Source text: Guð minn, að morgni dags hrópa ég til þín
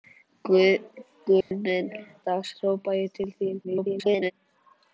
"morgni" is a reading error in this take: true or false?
true